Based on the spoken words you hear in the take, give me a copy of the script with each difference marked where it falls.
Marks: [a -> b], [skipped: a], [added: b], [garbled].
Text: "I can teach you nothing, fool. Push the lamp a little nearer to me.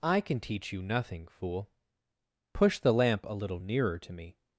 "I can teach you nothing, fool. Push the lamp a little nearer to me.